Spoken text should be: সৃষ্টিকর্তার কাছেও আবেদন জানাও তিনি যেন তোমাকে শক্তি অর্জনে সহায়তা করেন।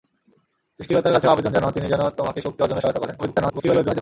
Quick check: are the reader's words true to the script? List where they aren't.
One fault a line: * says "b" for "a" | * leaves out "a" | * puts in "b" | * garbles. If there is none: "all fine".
* garbles